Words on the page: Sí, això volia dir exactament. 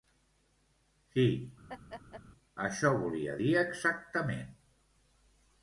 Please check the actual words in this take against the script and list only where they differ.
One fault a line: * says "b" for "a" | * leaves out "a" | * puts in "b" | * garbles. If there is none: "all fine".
all fine